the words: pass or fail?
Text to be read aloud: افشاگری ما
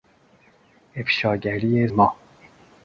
pass